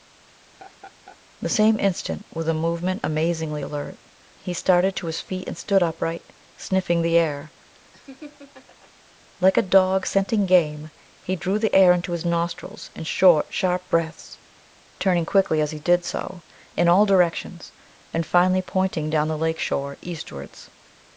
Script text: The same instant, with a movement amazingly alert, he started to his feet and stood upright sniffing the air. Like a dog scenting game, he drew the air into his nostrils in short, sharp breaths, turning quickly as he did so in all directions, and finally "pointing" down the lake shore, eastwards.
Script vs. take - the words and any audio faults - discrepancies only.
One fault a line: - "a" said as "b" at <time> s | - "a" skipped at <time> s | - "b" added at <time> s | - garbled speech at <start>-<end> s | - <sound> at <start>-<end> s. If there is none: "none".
- laugh at 0.4-1.2 s
- laugh at 7.9-8.9 s